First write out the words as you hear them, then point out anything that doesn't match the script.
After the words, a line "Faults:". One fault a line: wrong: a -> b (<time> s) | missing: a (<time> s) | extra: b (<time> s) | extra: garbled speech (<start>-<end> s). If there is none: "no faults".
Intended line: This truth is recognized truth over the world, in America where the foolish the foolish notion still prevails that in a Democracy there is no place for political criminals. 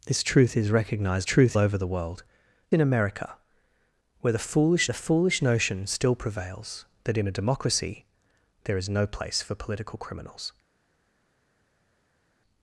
This truth is recognized truth over the world, in America where the foolish the foolish notion still prevails that in a Democracy there is no place for political criminals.
Faults:
no faults